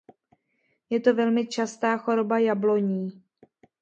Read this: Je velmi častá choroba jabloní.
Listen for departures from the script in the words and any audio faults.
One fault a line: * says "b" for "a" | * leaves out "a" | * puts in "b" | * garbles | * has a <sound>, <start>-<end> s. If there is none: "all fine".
* puts in "to"